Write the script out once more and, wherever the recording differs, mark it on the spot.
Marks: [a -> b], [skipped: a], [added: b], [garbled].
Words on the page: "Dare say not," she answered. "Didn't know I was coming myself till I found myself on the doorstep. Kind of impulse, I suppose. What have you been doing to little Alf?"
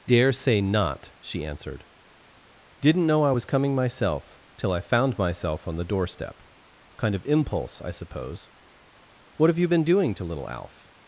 "Dare say not," she answered. "Didn't know I was coming myself till I found myself on the doorstep. Kind of impulse, I suppose. What have you been doing to little Alf?"